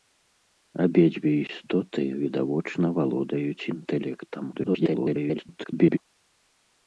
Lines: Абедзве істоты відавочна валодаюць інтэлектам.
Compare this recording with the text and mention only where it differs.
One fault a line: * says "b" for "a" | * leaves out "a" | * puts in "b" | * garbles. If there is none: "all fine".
* garbles